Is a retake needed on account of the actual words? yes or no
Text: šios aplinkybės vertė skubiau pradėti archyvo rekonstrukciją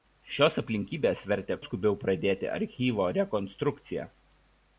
no